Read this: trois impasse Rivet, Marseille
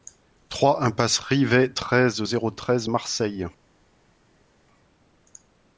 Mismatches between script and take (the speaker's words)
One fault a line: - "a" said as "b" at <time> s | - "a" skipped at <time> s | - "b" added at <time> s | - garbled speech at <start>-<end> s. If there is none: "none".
- "treize zéro treize" added at 1.7 s